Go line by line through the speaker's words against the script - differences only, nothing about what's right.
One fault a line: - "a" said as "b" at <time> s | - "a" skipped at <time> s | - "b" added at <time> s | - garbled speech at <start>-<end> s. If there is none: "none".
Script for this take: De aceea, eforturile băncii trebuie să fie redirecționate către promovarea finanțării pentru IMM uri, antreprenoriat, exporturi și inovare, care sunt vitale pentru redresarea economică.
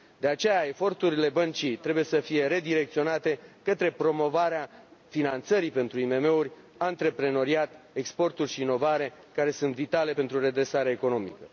none